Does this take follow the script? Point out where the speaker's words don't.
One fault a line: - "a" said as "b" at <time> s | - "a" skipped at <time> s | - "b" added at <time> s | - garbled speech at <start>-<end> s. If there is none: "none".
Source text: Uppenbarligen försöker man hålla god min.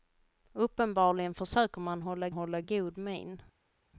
- "hålla" added at 2.3 s